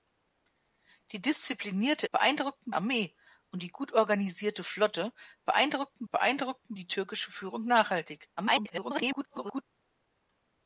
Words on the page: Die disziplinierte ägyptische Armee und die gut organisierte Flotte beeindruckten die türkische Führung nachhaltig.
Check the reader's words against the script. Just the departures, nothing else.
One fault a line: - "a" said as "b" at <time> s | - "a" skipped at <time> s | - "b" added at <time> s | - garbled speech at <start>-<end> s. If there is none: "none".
- "ägyptische" said as "beeindruckten" at 2.1 s
- "beeindruckten" added at 6.1 s
- garbled speech at 8.4-9.6 s